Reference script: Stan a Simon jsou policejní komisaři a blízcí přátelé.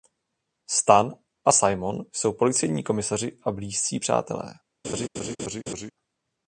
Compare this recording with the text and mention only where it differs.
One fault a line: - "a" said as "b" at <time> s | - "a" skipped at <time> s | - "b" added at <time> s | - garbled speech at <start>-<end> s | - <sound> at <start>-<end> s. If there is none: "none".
- laugh at 4.8-5.9 s